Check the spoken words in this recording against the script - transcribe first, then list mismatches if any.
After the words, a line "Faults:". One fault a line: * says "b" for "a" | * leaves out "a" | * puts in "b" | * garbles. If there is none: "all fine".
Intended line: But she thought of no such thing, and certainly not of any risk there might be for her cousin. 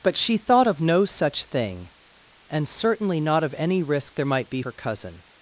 But she thought of no such thing, and certainly not of any risk there might be her cousin.
Faults:
* leaves out "for"